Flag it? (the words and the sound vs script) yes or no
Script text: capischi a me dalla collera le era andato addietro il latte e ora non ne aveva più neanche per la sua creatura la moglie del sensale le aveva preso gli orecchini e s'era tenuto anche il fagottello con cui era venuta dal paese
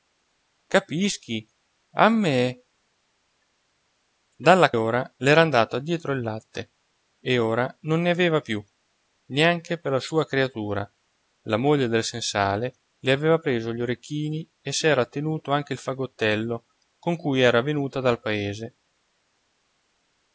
yes